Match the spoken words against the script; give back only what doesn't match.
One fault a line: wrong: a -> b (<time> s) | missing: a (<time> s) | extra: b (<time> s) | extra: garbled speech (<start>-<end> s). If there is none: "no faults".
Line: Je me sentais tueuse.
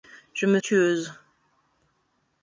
missing: sentais (0.6 s)